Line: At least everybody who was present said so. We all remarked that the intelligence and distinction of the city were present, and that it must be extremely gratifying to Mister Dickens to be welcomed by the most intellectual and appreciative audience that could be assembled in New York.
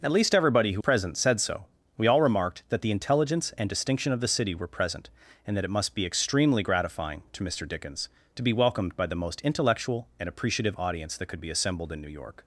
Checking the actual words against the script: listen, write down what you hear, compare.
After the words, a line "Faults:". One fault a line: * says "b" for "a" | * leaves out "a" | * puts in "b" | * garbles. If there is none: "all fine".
At least everybody who present said so. We all remarked that the intelligence and distinction of the city were present, and that it must be extremely gratifying to Mister Dickens to be welcomed by the most intellectual and appreciative audience that could be assembled in New York.
Faults:
* leaves out "was"